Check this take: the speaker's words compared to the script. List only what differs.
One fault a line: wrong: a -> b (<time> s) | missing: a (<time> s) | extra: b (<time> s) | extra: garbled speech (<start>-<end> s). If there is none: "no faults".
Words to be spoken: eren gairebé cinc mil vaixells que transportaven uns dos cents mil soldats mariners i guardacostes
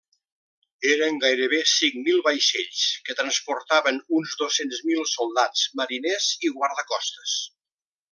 no faults